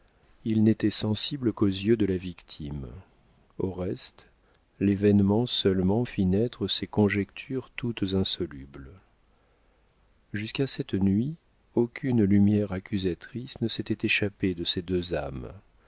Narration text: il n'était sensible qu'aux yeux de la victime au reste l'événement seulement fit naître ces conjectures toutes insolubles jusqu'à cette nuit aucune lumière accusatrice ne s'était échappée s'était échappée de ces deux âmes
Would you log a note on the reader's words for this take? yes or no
yes